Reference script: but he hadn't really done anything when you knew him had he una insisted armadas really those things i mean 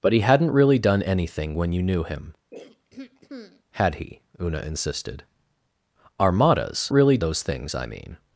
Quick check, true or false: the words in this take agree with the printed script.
true